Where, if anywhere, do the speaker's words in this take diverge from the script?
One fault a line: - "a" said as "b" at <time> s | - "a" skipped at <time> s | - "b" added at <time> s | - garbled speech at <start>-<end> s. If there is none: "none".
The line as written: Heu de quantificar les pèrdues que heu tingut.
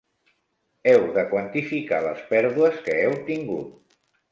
none